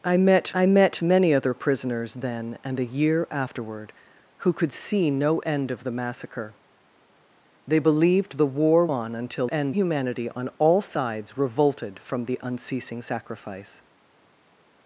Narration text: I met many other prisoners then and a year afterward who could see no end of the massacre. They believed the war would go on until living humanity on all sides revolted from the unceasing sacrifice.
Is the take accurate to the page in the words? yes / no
no